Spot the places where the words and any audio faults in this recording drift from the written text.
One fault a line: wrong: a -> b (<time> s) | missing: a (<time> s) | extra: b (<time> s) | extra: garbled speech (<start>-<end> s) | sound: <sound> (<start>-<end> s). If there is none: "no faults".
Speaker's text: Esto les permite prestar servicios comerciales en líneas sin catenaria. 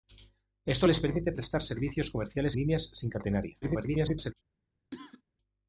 missing: en (2.6 s)
extra: garbled speech (3.6-4.3 s)
sound: cough (4.9-5.2 s)